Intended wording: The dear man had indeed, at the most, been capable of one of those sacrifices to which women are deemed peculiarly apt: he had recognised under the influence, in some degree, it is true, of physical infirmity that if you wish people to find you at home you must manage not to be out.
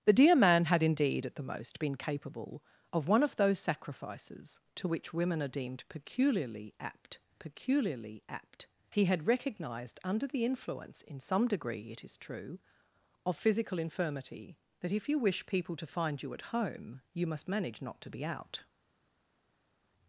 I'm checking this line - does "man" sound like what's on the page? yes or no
yes